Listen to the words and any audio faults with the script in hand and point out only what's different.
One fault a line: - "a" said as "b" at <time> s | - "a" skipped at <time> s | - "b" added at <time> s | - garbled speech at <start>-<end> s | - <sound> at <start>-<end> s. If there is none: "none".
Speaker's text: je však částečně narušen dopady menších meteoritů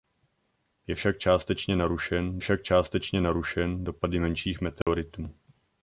- "však částečně narušen" added at 2.4 s
- dropout at 4.8-4.9 s